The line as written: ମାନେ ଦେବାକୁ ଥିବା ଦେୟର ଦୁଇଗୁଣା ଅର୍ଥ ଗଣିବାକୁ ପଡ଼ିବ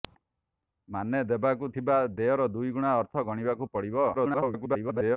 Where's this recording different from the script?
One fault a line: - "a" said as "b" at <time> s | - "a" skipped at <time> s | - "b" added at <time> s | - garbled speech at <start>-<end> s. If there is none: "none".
- garbled speech at 4.1-5.2 s